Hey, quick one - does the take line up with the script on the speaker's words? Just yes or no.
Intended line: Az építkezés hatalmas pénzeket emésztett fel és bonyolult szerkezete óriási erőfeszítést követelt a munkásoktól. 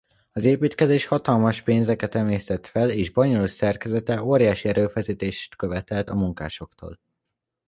yes